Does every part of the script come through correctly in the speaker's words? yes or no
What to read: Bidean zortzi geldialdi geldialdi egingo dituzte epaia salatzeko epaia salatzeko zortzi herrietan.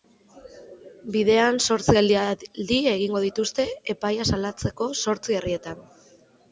no